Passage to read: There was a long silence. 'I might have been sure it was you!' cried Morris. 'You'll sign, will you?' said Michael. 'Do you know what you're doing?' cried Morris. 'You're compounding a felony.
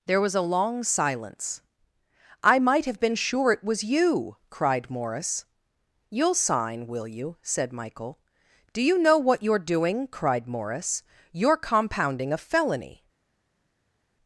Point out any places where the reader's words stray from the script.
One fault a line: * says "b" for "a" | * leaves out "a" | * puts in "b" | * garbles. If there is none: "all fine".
all fine